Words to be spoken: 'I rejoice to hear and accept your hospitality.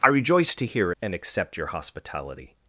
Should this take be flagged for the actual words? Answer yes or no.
no